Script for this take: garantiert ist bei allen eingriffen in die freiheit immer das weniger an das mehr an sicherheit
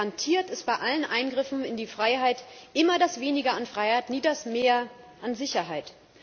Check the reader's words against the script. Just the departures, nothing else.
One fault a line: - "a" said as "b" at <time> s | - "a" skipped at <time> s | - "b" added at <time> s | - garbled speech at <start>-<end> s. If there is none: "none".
- "freiheit nie" added at 3.6 s